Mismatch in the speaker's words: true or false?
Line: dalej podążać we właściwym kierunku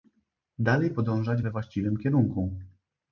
false